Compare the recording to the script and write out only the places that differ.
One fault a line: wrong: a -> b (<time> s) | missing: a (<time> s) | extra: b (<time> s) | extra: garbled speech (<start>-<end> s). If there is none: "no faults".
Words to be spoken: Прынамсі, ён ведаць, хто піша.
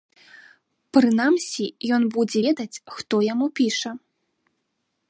extra: будзе (2.2 s)
extra: яму (3.3 s)